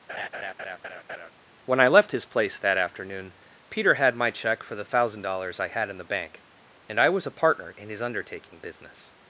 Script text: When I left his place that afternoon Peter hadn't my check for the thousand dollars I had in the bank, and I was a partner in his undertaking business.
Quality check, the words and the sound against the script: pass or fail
fail